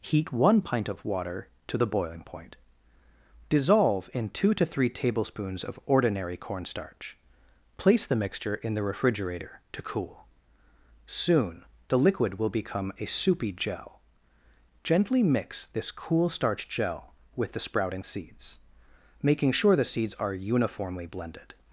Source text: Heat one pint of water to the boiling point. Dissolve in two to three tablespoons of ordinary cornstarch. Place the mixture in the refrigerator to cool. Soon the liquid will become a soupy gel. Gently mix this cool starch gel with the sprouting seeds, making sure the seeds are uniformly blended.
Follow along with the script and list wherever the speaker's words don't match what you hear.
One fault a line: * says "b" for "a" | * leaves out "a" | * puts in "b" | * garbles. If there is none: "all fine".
all fine